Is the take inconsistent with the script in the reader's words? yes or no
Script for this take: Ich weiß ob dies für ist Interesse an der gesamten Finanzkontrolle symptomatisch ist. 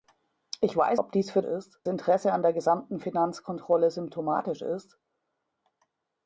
no